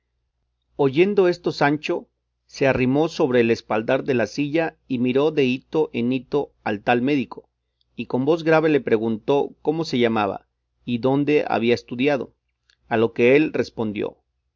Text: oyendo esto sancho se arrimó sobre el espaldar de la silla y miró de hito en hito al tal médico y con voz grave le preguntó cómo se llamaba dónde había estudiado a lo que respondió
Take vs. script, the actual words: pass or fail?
fail